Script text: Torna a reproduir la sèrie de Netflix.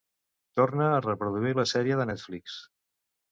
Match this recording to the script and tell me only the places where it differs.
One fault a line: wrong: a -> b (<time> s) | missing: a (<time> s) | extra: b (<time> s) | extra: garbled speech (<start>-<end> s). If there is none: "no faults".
no faults